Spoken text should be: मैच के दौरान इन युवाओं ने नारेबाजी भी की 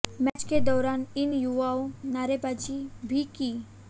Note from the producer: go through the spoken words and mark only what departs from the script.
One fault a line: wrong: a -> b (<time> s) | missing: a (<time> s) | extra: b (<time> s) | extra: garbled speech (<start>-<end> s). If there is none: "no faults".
missing: ने (1.9 s)